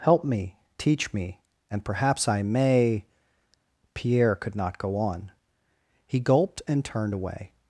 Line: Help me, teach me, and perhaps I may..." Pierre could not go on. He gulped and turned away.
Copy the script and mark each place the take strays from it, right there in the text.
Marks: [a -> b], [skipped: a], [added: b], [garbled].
Help me, teach me, and perhaps I may..." Pierre could not go on. He gulped and turned away.